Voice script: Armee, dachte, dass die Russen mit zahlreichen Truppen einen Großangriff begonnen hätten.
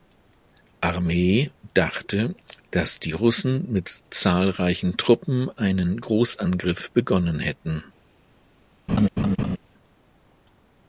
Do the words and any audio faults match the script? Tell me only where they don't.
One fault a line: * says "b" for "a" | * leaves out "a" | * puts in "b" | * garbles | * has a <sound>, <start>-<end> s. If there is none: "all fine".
* has a laugh, 8.9-9.6 s